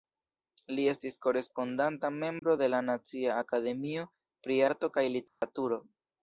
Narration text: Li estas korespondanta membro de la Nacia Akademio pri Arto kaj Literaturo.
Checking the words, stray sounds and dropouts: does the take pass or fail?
fail